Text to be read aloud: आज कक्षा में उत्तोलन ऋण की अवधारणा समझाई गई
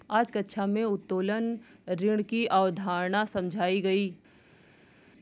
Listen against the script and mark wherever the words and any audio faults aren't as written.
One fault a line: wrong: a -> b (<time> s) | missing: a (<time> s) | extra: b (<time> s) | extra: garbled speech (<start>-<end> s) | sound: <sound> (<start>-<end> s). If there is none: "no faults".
no faults